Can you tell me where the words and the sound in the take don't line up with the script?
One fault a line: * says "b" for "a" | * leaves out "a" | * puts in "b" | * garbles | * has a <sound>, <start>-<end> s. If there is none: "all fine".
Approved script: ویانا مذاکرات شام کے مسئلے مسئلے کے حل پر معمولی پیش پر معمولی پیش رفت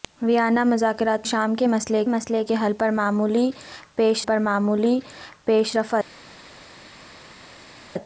all fine